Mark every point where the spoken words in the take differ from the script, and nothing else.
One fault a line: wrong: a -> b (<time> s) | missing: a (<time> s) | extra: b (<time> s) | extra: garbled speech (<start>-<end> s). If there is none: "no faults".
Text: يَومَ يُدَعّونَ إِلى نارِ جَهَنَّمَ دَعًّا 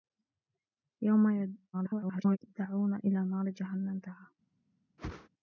extra: garbled speech (1.7-2.4 s)